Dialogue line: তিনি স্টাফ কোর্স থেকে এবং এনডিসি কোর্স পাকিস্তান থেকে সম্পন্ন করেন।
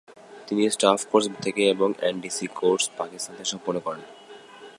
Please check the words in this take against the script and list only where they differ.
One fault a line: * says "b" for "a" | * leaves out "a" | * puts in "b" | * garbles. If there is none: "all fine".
all fine